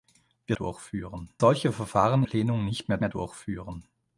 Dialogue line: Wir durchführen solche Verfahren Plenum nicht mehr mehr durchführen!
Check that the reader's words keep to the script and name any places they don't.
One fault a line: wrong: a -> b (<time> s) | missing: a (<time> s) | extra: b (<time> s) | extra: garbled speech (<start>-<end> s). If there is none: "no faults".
no faults